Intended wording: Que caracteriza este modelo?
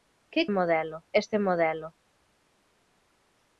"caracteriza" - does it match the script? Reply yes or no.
no